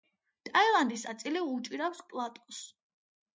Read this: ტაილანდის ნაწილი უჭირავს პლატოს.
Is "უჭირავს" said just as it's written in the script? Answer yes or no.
yes